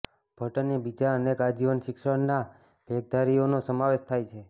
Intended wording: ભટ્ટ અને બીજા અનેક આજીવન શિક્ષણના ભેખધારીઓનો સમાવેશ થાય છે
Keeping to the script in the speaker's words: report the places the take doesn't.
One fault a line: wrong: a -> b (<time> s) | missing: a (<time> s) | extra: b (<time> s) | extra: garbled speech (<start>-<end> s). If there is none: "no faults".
no faults